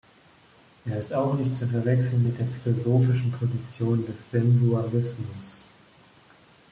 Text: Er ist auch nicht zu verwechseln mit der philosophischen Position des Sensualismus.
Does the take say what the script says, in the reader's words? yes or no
yes